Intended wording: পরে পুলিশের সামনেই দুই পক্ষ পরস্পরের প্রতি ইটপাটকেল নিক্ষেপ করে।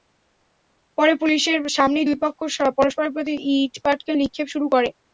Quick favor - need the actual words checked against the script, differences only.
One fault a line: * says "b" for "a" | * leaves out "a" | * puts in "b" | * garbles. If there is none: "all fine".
* puts in "শুরু"